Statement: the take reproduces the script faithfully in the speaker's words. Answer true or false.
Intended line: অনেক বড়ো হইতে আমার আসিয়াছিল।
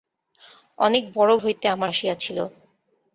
true